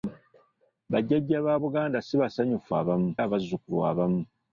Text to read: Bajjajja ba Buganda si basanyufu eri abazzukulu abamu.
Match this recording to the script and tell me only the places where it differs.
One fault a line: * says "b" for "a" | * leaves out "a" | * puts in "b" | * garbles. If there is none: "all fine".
* says "abamu" for "eri"